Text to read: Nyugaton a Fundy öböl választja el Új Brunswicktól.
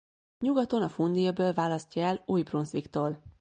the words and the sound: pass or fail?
pass